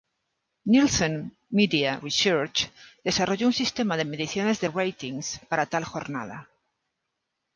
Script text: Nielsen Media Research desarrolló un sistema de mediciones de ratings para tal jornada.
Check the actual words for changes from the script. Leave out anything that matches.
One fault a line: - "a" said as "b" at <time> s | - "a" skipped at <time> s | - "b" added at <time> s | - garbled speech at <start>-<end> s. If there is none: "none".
none